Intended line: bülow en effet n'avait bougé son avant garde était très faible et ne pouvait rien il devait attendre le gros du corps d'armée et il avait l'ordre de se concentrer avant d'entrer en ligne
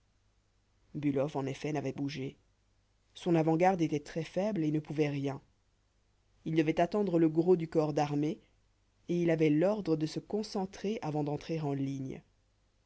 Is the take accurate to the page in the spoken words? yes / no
yes